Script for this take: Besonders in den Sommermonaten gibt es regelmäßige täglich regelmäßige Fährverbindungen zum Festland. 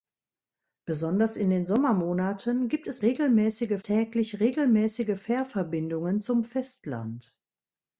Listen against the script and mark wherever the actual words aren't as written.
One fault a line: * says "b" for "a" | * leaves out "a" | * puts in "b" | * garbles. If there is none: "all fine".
all fine